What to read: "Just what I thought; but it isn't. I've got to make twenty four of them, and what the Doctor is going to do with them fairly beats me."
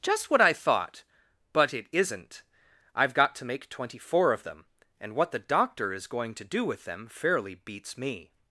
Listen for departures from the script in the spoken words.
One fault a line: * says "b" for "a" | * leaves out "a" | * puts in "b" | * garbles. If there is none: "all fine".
all fine